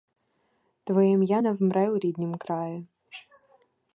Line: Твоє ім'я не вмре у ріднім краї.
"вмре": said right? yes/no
yes